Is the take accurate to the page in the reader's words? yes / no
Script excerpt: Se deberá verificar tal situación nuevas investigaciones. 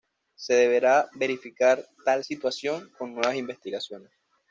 no